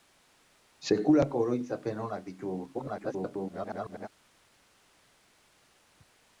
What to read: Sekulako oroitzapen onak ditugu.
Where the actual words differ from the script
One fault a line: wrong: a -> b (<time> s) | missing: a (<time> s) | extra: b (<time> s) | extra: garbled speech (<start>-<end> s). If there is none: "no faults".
extra: garbled speech (2.7-4.1 s)